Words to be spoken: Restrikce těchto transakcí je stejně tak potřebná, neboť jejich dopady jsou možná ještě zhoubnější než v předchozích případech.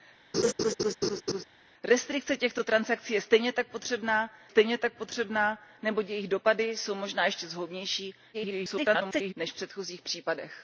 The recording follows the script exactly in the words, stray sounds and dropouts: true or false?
false